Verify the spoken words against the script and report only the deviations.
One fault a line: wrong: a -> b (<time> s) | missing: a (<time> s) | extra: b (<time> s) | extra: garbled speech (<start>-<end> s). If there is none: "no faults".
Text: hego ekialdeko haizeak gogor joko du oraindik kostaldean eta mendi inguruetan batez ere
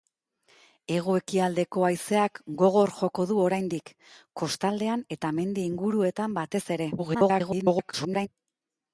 extra: garbled speech (7.0-8.3 s)